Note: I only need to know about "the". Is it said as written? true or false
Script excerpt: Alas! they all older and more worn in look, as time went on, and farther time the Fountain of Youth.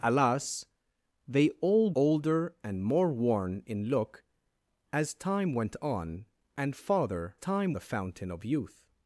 true